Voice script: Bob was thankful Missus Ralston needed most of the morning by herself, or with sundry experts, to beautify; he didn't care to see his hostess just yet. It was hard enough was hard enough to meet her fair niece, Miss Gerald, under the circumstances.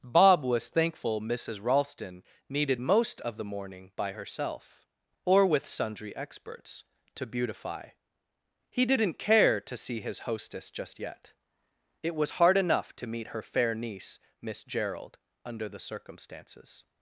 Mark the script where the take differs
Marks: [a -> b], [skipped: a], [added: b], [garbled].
Bob was thankful Missus Ralston needed most of the morning by herself, or with sundry experts, to beautify; he didn't care to see his hostess just yet. It was hard enough [skipped: was hard enough] to meet her fair niece, Miss Gerald, under the circumstances.